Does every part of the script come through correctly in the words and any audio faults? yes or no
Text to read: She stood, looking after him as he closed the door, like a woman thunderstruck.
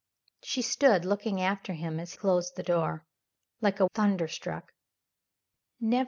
no